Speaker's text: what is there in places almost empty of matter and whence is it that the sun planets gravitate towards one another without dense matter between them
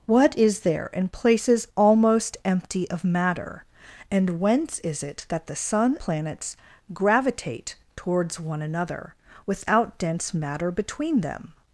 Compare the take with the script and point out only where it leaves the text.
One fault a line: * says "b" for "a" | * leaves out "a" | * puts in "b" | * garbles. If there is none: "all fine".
all fine